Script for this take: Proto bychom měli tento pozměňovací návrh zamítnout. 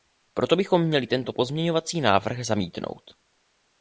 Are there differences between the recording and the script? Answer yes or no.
no